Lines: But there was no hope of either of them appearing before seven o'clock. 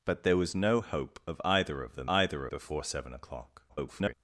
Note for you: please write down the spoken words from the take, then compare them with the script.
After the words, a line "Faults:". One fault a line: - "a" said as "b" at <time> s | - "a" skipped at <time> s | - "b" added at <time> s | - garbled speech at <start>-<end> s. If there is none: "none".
But there was no hope of either of them either before seven o'clock. [garbled]
Faults:
- "appearing" said as "either" at 2.1 s
- garbled speech at 3.7-4.1 s